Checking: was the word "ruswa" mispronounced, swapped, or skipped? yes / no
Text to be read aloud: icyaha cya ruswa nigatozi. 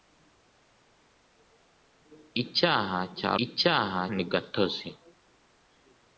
yes